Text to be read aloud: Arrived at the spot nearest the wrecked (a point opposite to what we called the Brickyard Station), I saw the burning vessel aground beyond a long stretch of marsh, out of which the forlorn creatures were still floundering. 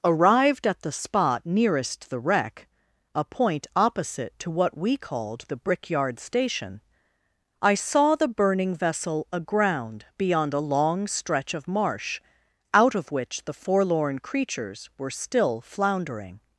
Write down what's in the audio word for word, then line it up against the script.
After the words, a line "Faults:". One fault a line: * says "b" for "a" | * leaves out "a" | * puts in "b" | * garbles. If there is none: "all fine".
Arrived at the spot nearest the wreck (a point opposite to what we called the Brickyard Station), I saw the burning vessel aground beyond a long stretch of marsh, out of which the forlorn creatures were still floundering.
Faults:
* says "wreck" for "wrecked"